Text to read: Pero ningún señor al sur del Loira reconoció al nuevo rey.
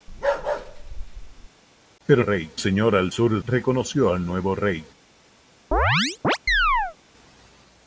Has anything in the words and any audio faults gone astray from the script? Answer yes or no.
yes